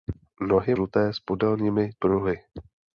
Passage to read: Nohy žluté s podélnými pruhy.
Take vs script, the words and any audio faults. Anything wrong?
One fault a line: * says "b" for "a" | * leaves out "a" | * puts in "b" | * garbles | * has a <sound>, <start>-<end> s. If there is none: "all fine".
all fine